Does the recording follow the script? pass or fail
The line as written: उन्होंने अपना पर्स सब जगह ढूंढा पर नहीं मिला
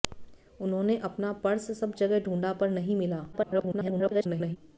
fail